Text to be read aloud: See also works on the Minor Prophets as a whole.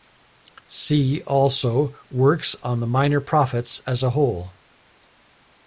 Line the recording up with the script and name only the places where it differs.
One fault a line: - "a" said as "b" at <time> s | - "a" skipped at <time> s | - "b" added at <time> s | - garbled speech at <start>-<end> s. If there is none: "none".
none